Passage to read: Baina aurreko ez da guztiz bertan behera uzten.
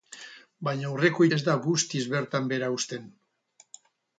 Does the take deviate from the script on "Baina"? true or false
false